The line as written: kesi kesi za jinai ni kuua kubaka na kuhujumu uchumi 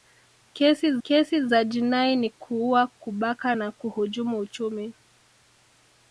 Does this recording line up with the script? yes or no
yes